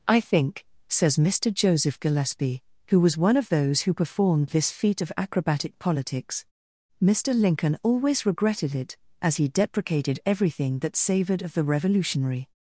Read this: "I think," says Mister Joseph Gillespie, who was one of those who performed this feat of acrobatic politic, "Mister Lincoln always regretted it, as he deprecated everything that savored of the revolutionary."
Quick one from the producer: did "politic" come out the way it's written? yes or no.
no